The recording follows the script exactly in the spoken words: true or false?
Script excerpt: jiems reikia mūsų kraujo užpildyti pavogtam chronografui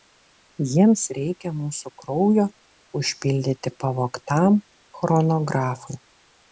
true